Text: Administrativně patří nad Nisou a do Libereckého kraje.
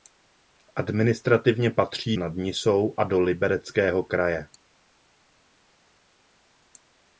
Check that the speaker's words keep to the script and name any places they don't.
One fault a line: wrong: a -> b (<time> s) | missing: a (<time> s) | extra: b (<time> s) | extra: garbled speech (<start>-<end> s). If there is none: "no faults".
no faults